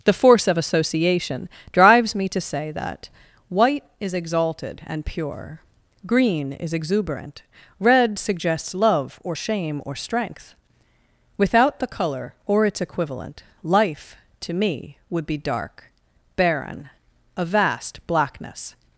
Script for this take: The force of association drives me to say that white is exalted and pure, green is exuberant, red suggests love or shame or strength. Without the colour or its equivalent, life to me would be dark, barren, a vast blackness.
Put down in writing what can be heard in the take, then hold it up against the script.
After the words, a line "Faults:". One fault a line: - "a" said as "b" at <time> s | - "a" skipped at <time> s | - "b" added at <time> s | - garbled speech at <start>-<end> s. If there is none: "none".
The force of association drives me to say that white is exalted and pure, green is exuberant, red suggests love or shame or strength. Without the colour or its equivalent, life to me would be dark, barren, a vast blackness.
Faults:
none